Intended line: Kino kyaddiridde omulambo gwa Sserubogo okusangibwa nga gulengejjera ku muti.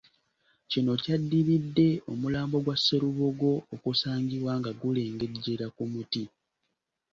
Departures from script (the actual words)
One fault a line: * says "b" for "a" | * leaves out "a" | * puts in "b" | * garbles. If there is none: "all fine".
all fine